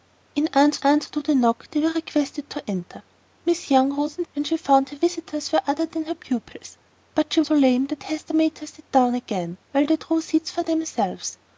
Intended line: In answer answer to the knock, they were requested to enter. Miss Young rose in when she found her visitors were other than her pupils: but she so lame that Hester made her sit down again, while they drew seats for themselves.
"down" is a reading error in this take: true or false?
false